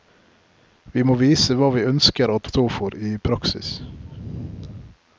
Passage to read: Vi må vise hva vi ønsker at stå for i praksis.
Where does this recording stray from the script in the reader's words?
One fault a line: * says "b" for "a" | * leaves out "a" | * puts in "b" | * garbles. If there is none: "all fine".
all fine